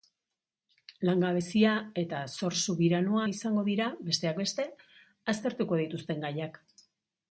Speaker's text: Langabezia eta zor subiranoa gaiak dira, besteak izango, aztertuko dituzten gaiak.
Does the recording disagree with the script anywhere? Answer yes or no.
yes